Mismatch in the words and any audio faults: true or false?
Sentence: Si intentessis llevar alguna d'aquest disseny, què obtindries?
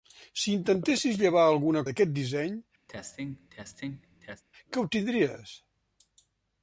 true